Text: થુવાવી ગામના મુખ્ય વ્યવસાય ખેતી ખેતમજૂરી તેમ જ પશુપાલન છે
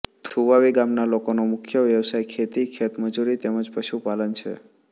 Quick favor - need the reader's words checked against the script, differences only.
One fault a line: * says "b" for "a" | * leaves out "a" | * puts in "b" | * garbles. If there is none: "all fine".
* puts in "લોકોનો"